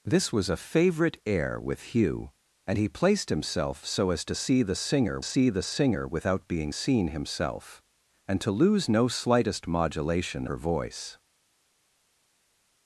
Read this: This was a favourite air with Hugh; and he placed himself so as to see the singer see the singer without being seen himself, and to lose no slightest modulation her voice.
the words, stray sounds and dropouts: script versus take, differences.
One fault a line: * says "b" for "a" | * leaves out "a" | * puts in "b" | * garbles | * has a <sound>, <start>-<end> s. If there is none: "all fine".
all fine